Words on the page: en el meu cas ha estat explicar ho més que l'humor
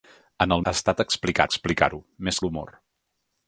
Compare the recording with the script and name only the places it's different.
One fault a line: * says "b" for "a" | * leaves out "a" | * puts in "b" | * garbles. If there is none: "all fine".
* leaves out "meu cas"
* puts in "explicar"
* leaves out "que"